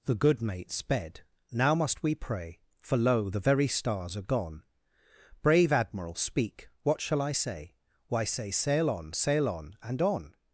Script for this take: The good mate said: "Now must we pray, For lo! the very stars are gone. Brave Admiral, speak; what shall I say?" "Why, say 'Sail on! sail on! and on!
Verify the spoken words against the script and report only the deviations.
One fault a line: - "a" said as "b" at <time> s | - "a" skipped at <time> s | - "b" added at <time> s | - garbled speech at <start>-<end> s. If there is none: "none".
- "said" said as "sped" at 0.7 s